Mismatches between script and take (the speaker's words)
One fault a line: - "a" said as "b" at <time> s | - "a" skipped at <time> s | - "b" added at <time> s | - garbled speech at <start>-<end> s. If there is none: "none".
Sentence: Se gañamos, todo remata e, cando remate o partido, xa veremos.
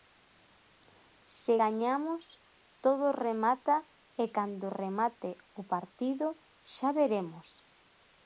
none